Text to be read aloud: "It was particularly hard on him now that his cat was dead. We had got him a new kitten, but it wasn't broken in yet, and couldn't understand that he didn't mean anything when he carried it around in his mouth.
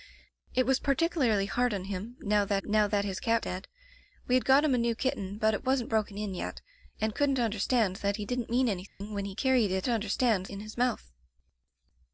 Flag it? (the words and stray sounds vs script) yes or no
yes